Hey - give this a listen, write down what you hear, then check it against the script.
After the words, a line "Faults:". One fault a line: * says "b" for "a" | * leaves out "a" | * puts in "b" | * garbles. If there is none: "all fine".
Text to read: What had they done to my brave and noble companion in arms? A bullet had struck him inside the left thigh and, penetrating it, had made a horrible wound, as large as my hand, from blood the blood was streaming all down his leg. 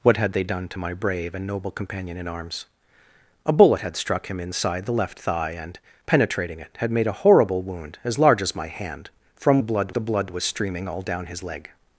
What had they done to my brave and noble companion in arms? A bullet had struck him inside the left thigh and, penetrating it, had made a horrible wound, as large as my hand, from blood the blood was streaming all down his leg.
Faults:
all fine